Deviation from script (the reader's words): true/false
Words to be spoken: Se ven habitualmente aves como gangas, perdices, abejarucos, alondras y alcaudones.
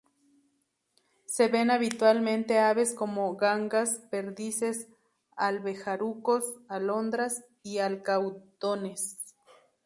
false